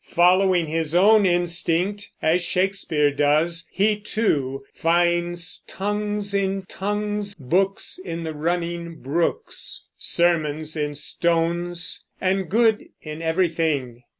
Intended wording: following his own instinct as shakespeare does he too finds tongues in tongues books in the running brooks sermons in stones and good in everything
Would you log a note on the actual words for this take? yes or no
no